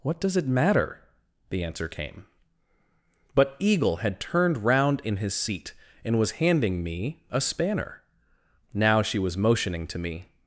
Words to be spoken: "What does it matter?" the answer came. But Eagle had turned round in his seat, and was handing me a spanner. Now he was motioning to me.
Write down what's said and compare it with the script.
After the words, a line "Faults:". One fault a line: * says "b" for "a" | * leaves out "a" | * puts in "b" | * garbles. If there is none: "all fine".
"What does it matter?" the answer came. But Eagle had turned round in his seat, and was handing me a spanner. Now she was motioning to me.
Faults:
* says "she" for "he"